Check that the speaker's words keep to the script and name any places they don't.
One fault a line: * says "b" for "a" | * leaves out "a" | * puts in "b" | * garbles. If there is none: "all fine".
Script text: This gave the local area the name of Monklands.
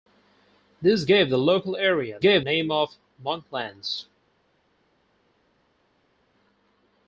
* says "gave" for "the"